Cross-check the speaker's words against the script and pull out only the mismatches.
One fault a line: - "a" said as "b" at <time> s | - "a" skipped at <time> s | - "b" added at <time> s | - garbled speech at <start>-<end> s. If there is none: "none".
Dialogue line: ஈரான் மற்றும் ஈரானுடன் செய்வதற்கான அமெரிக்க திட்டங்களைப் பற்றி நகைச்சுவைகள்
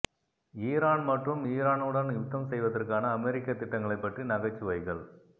- "யுத்தம்" added at 2.1 s